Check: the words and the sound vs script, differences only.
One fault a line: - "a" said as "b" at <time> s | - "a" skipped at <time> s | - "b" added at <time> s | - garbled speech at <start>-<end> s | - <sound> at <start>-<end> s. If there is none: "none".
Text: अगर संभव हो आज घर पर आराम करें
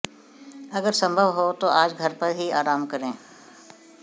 - "तो" added at 1.5 s
- "ही" added at 2.4 s